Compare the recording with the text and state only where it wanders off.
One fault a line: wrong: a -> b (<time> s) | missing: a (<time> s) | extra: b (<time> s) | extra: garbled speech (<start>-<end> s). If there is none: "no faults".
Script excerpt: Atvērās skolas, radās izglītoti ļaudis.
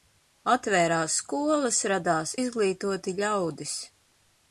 no faults